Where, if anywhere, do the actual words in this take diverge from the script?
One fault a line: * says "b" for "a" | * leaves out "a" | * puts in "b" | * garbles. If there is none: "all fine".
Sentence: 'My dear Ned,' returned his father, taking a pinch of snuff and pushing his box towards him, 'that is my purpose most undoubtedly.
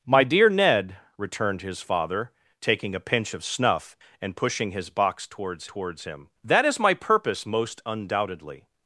* puts in "towards"